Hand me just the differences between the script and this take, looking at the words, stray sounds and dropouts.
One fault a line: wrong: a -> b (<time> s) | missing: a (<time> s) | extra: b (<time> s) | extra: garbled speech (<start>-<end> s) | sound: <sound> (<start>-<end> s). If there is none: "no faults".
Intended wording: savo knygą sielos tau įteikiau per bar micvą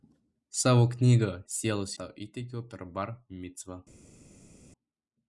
no faults